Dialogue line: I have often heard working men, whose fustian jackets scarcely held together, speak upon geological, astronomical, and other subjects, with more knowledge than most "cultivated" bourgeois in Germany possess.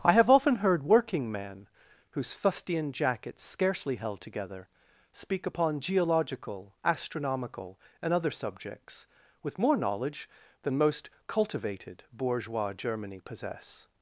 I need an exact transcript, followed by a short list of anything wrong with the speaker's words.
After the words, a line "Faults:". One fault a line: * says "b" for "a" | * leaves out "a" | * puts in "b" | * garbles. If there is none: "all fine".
I have often heard working men, whose fustian jackets scarcely held together, speak upon geological, astronomical, and other subjects, with more knowledge than most "cultivated" bourgeois Germany possess.
Faults:
* leaves out "in"